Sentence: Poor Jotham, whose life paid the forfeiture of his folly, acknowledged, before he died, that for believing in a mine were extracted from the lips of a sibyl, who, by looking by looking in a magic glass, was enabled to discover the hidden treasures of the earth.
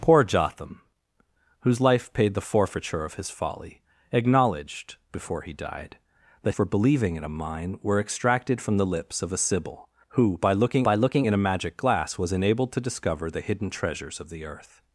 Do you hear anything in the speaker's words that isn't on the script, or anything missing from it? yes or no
no